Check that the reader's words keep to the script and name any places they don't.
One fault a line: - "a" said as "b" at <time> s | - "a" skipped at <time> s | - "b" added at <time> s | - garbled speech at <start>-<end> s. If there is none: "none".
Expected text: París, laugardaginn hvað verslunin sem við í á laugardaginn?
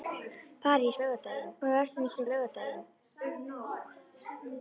none